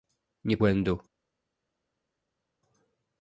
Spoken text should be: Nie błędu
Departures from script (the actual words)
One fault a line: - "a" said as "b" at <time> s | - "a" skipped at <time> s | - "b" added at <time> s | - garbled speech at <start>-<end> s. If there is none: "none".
none